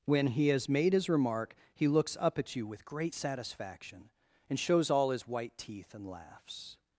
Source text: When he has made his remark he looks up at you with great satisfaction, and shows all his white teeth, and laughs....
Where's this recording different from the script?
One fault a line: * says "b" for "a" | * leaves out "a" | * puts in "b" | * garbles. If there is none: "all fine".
all fine